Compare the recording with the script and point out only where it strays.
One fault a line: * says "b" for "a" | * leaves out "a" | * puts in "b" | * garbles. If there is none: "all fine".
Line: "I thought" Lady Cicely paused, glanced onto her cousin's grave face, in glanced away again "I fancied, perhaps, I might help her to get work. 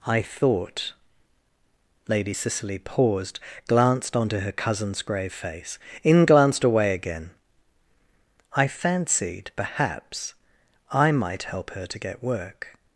all fine